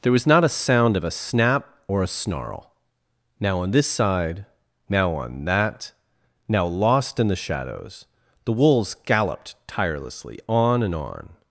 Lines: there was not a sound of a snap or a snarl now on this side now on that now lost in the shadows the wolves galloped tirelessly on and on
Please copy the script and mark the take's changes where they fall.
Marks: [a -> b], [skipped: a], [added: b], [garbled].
there was not a sound of a snap or a snarl now on this side now on that now lost in the shadows the wolves galloped tirelessly on and on